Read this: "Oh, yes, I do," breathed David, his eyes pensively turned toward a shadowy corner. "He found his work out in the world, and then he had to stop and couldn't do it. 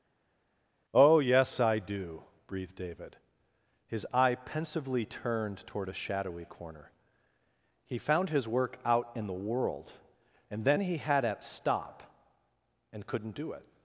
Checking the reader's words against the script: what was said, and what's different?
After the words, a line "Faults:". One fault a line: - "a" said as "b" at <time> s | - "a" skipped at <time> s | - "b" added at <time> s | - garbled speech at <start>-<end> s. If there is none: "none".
"Oh, yes, I do," breathed David, his eye pensively turned toward a shadowy corner. "He found his work out in the world, and then he had at stop and couldn't do it.
Faults:
- "eyes" said as "eye" at 4.1 s
- "to" said as "at" at 11.2 s